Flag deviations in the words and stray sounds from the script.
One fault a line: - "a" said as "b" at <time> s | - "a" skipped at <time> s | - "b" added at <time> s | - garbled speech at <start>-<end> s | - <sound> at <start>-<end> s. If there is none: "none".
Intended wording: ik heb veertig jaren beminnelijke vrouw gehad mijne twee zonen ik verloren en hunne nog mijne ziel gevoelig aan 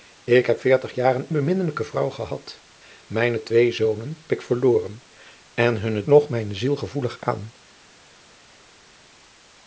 none